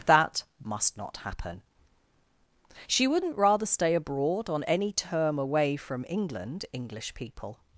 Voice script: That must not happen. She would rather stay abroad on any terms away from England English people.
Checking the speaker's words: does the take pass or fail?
fail